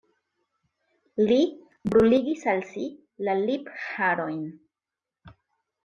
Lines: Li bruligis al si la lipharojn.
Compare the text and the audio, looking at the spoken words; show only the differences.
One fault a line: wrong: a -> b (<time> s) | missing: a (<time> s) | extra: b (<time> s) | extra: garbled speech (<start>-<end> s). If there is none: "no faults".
no faults